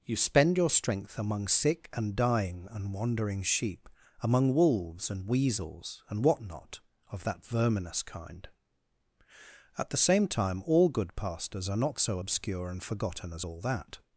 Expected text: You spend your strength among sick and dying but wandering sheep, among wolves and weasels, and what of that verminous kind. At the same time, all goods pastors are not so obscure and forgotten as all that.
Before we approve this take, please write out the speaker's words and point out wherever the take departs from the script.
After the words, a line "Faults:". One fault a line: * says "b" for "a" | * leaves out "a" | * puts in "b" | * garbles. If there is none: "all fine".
You spend your strength among sick and dying and wandering sheep, among wolves and weasels, and what not, of that verminous kind. At the same time, all good pastors are not so obscure and forgotten as all that.
Faults:
* says "and" for "but"
* puts in "not"
* says "good" for "goods"